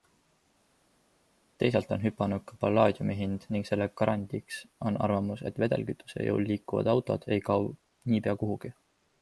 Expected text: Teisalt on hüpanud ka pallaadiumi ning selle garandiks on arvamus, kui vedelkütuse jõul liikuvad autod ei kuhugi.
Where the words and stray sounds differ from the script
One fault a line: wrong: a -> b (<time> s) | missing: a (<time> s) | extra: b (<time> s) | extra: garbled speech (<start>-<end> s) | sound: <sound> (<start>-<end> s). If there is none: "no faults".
extra: hind (3.2 s)
wrong: kui -> et (5.5 s)
extra: kao niipea (7.5 s)